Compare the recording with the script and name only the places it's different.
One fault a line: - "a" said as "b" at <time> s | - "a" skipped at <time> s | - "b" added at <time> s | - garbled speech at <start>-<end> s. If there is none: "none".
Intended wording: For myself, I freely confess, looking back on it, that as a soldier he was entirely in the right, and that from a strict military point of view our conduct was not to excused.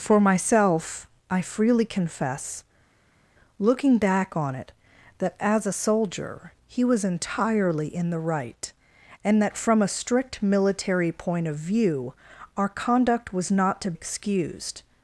none